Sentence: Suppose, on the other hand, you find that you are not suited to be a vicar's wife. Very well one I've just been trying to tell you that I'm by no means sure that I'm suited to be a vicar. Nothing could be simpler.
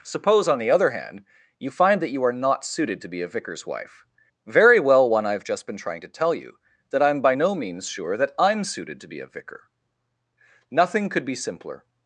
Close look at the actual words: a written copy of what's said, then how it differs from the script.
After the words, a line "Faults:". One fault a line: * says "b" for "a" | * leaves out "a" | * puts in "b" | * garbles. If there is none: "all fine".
Suppose, on the other hand, you find that you are not suited to be a vicar's wife. Very well one I've just been trying to tell you that I'm by no means sure that I'm suited to be a vicar. Nothing could be simpler.
Faults:
all fine